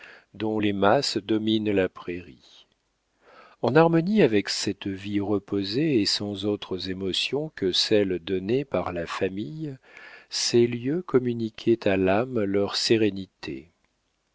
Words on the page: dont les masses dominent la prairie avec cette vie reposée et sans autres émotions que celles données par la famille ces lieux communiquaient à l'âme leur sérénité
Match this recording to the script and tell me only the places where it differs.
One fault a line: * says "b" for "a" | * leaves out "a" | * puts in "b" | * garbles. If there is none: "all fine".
* puts in "en harmonie"